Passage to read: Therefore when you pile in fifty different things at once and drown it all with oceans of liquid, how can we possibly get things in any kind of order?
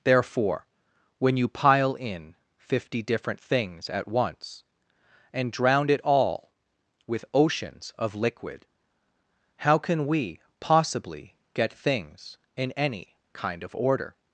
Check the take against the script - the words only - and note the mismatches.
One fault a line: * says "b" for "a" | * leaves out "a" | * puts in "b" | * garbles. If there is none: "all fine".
all fine